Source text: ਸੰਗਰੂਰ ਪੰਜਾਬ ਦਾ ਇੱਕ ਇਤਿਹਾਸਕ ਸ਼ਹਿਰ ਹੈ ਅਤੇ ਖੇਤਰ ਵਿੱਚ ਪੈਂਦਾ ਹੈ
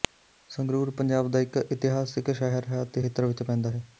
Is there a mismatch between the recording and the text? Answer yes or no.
no